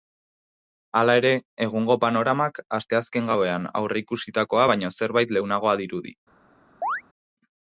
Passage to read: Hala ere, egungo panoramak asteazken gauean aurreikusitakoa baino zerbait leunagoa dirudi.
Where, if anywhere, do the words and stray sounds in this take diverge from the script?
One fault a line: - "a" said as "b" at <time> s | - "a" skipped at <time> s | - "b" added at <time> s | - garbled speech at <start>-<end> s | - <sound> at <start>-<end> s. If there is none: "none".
- chirp at 6.8-7.0 s